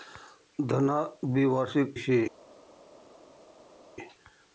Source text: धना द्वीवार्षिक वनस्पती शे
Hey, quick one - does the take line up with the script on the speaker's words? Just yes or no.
no